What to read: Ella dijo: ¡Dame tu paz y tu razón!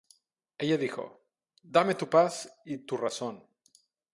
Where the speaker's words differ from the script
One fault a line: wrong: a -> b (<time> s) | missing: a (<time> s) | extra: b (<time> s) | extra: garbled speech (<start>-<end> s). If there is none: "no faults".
no faults